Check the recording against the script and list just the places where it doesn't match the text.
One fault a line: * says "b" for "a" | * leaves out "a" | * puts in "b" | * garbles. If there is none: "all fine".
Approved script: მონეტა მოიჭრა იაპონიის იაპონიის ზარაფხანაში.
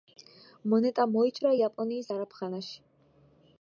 * leaves out "იაპონიის"